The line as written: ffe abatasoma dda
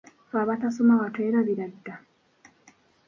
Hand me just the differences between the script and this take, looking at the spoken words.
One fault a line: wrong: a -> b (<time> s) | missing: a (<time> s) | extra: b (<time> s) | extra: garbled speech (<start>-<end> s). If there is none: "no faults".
extra: watwerabira (1.0 s)